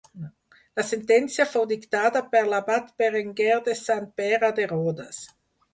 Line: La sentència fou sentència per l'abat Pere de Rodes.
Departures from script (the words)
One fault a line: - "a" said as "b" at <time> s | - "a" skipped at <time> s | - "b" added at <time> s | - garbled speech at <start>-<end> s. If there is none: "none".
- "sentència" said as "dictada" at 1.7 s
- "Berenguer de Sant" added at 3.0 s